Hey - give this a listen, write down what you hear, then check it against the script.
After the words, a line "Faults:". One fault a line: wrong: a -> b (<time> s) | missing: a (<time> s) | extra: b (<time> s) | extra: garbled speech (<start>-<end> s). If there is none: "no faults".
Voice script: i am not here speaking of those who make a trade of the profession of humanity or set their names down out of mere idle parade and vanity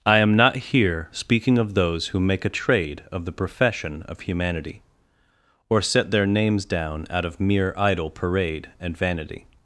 i am not here speaking of those who make a trade of the profession of humanity or set their names down out of mere idle parade and vanity
Faults:
no faults